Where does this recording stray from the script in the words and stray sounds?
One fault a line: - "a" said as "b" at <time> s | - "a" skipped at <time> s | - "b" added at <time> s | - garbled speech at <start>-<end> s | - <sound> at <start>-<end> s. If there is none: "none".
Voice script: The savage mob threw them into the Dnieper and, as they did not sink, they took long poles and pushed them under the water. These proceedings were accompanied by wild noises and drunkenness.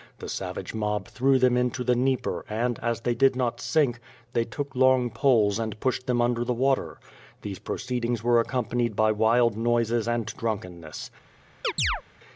- chirp at 11.6-12.0 s